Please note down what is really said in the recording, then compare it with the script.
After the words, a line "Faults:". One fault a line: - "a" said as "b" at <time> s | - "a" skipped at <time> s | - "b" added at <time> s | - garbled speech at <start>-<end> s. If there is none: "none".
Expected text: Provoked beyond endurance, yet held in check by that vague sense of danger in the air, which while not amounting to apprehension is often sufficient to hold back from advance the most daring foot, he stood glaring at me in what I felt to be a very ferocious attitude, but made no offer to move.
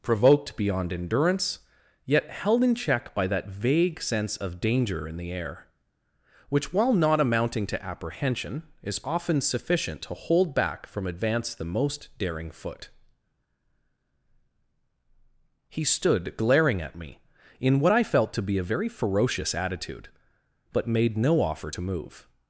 Provoked beyond endurance, yet held in check by that vague sense of danger in the air, which while not amounting to apprehension is often sufficient to hold back from advance the most daring foot, he stood glaring at me in what I felt to be a very ferocious attitude, but made no offer to move.
Faults:
none